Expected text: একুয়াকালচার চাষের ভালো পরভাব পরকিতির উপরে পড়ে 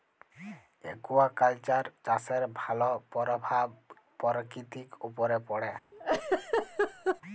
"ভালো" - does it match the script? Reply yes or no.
yes